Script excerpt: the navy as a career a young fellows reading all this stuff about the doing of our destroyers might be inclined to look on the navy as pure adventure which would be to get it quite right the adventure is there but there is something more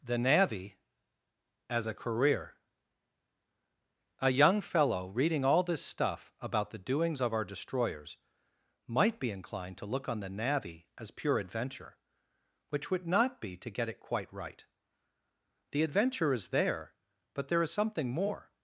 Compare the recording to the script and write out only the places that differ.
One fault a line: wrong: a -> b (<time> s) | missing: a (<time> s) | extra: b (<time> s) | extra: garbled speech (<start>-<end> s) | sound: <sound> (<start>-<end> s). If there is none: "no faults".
wrong: fellows -> fellow (4.6 s)
wrong: doing -> doings (6.8 s)
extra: not (13.1 s)